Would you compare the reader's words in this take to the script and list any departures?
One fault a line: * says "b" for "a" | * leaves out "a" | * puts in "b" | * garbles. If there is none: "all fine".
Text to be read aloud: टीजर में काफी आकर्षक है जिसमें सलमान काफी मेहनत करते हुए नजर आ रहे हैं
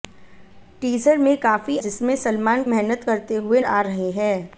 * leaves out "आकर्षक है"
* leaves out "काफी"
* leaves out "नजर"